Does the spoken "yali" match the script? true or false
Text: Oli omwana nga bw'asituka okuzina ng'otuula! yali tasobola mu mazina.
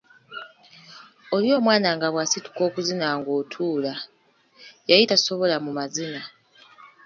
true